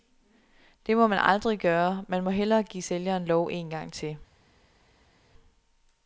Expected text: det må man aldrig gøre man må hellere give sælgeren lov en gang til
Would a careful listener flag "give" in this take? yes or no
no